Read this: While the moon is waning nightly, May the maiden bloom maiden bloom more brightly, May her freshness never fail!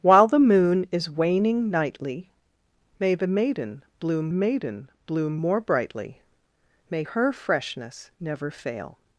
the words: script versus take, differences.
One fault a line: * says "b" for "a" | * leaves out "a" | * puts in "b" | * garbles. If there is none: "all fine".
all fine